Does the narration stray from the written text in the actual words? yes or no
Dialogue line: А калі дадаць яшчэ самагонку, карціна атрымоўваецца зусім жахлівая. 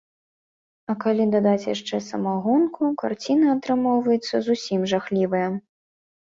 no